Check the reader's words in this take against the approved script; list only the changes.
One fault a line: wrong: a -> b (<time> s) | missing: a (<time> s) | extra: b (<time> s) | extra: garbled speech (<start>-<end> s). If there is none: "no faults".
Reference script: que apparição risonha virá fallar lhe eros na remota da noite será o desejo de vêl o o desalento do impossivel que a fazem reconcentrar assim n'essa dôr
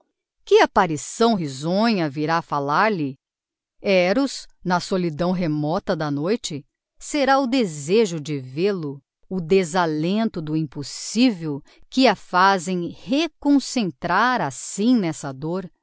extra: solidão (4.8 s)